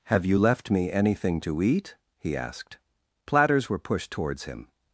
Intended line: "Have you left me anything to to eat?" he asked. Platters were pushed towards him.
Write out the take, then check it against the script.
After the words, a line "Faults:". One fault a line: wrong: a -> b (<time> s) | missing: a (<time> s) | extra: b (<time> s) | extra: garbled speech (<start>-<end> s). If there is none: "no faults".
"Have you left me anything to eat?" he asked. Platters were pushed towards him.
Faults:
missing: to (1.6 s)